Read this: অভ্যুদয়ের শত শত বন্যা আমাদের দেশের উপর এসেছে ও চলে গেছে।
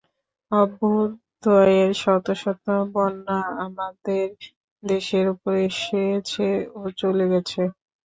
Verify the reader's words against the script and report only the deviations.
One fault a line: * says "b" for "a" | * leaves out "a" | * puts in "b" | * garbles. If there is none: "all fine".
all fine